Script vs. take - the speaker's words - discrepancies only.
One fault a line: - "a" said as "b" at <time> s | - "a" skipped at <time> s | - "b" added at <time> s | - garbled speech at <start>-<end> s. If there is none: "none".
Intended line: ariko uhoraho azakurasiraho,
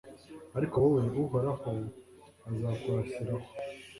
- "wowe" added at 0.8 s